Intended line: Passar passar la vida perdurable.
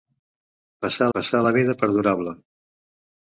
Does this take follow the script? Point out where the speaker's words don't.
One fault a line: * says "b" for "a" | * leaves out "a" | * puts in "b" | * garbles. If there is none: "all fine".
all fine